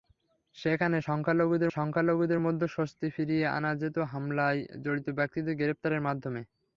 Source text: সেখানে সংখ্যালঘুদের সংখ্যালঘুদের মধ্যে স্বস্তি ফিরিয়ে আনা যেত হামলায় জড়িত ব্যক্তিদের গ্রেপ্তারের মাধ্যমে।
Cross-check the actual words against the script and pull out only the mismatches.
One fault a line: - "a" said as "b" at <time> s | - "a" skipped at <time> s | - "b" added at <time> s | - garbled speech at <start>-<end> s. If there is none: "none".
none